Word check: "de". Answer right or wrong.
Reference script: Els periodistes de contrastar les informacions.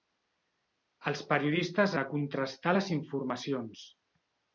right